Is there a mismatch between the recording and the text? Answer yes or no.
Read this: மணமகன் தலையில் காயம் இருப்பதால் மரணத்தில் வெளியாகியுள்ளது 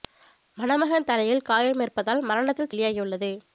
no